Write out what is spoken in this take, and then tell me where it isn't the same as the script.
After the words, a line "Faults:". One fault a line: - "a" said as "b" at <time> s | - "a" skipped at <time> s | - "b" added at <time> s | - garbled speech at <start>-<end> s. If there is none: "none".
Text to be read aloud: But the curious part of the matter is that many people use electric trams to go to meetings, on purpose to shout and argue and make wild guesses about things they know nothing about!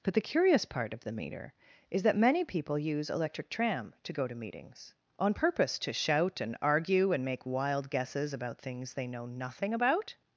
But the curious part of the meter is that many people use electric tram to go to meetings, on purpose to shout and argue and make wild guesses about things they know nothing about!
Faults:
- "matter" said as "meter" at 1.1 s
- "trams" said as "tram" at 3.5 s